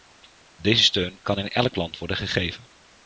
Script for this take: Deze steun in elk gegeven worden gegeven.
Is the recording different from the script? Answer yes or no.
yes